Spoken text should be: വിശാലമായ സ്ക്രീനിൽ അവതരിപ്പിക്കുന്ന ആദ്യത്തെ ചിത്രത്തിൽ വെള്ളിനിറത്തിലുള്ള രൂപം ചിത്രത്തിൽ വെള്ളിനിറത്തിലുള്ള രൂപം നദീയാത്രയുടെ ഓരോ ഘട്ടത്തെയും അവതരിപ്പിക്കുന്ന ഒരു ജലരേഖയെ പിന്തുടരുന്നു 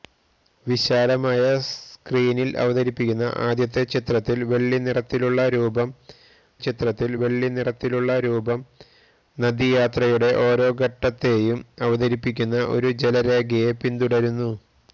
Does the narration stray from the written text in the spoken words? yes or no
no